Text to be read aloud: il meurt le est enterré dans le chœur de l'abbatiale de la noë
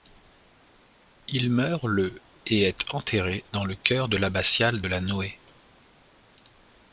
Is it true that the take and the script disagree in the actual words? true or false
true